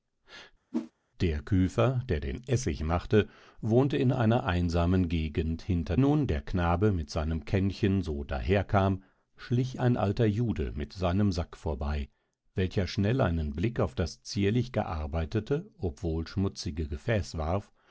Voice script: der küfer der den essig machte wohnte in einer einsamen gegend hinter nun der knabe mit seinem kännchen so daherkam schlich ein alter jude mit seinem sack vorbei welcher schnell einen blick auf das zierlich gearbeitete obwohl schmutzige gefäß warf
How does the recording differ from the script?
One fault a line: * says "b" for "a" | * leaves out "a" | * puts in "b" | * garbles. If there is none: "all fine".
all fine